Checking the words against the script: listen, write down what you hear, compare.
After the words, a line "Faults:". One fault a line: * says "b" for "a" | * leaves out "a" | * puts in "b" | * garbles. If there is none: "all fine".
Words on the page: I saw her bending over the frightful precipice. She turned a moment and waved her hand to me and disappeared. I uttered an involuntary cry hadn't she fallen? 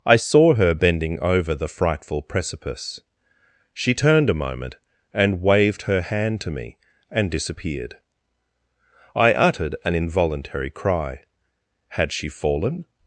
I saw her bending over the frightful precipice. She turned a moment and waved her hand to me and disappeared. I uttered an involuntary cry had she fallen?
Faults:
* says "had" for "hadn't"